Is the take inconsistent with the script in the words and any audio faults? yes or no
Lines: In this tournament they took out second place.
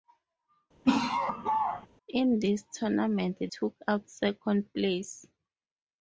yes